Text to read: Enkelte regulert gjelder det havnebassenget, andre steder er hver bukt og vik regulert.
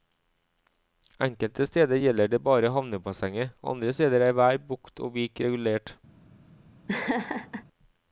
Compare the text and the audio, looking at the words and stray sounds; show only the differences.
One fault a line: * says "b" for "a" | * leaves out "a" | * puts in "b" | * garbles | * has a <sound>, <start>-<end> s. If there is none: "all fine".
* says "steder" for "regulert"
* puts in "bare"
* has a laugh, 6.9-7.6 s